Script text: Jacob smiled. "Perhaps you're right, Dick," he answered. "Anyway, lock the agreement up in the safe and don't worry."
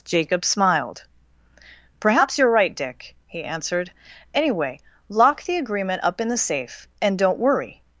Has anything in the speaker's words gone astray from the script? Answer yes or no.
no